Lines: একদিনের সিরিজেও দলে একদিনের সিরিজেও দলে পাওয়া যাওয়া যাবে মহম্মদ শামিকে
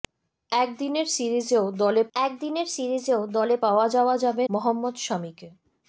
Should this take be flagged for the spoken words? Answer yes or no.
no